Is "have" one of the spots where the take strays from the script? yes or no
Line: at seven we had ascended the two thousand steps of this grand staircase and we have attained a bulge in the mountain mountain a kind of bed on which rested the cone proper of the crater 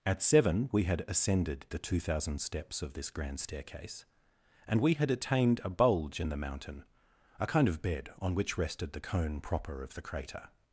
yes